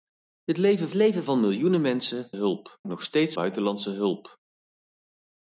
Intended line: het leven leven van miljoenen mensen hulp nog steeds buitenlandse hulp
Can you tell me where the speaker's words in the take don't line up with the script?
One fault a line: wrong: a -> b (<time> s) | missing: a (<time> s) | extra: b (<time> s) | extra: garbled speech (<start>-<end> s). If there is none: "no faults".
no faults